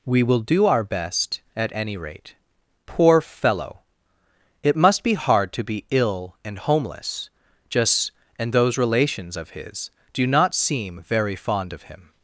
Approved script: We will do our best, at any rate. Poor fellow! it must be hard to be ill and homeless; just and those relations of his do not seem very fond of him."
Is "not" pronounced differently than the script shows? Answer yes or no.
no